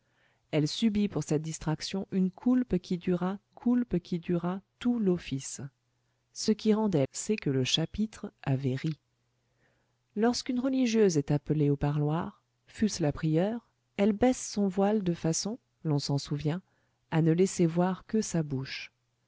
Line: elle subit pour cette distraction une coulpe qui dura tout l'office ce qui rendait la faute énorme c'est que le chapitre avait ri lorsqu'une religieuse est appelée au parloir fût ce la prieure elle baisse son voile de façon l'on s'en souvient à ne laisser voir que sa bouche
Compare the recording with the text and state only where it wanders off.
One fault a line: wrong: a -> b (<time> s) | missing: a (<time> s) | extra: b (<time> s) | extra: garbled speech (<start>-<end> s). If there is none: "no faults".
extra: coulpe qui dura (3.5 s)
missing: la faute énorme (7.1 s)